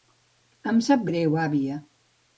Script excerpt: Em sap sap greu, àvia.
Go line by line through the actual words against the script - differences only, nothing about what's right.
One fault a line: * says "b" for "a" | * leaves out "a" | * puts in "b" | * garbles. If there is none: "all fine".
* leaves out "sap"